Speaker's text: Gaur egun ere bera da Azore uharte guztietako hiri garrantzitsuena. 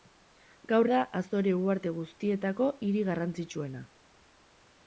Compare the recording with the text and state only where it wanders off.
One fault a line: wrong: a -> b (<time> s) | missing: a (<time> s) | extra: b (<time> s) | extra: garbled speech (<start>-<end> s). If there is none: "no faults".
missing: egun ere bera (0.9 s)